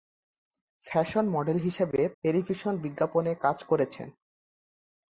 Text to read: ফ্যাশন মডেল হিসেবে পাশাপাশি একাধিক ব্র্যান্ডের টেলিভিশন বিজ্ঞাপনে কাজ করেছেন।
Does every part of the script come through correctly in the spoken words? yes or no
no